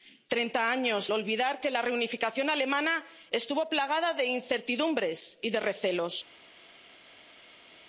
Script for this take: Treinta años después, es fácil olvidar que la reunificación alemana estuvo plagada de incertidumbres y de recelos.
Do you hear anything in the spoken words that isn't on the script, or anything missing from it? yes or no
yes